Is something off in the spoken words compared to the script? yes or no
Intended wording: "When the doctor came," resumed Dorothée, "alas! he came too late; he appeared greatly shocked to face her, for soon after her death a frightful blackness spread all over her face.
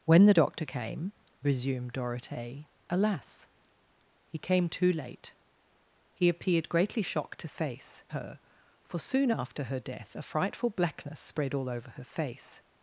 no